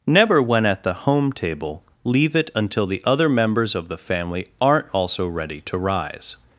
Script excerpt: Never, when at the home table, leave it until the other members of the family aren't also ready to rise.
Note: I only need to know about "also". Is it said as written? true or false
true